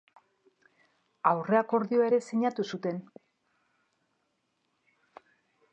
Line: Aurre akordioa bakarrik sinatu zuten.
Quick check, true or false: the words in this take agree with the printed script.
false